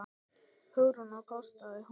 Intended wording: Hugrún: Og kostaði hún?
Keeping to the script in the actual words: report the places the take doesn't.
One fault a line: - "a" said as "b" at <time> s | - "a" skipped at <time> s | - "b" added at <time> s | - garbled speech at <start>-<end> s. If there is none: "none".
none